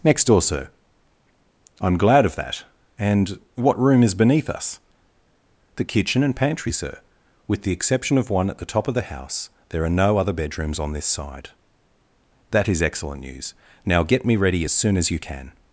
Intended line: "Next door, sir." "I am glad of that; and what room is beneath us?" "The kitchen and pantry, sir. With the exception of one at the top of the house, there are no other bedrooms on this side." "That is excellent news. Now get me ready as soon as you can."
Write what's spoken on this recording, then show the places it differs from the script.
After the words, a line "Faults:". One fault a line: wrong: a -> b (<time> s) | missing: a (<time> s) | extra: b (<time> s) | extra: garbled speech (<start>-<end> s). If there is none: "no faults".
"Next door, sir." "I am glad of that; and what room is beneath us?" "The kitchen and pantry, sir. With the exception of one at the top of the house, there are no other bedrooms on this side." "That is excellent news. Now get me ready as soon as you can."
Faults:
no faults